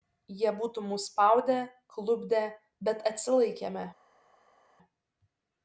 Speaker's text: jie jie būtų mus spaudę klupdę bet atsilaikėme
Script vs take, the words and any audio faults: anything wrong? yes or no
yes